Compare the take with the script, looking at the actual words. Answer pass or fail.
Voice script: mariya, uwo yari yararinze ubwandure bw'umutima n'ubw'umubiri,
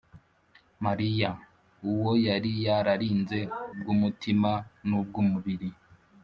fail